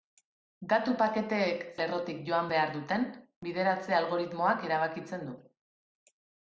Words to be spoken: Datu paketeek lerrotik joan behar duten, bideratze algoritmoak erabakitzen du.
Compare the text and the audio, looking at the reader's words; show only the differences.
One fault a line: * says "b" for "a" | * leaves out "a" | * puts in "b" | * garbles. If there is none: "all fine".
all fine